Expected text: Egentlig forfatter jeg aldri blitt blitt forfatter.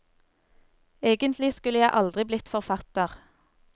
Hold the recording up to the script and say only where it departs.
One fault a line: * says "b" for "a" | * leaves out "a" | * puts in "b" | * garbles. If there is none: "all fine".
* says "skulle" for "forfatter"
* leaves out "blitt"